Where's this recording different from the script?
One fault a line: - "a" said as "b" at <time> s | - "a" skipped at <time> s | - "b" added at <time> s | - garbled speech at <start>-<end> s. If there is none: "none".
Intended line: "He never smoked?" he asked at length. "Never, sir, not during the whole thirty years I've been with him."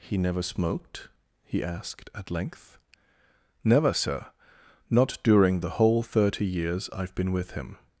none